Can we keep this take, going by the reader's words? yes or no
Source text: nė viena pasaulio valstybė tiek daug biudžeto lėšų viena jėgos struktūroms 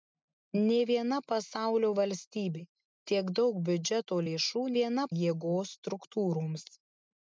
yes